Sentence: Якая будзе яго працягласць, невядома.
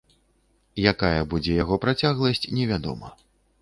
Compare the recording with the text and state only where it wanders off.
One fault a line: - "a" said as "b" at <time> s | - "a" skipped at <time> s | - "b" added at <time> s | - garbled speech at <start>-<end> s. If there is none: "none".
none